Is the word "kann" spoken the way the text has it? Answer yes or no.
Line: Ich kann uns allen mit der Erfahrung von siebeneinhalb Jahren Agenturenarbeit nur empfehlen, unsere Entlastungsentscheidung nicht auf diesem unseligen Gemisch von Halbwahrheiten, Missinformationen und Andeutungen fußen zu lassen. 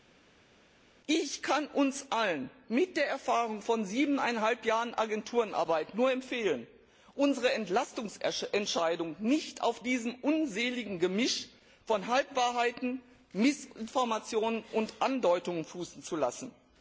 yes